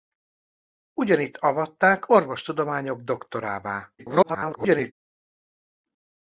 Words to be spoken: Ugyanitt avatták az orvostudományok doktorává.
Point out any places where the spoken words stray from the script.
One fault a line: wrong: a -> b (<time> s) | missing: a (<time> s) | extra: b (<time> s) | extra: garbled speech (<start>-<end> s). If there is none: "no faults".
missing: az (2.1 s)
extra: garbled speech (4.0-4.9 s)